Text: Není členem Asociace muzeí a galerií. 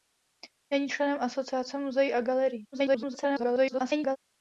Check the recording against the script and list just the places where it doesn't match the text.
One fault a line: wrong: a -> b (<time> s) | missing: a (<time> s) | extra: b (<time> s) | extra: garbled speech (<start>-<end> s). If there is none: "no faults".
extra: garbled speech (2.7-4.2 s)